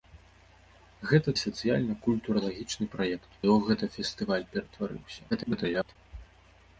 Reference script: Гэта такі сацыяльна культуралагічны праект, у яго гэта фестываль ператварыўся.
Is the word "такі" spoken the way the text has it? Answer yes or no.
no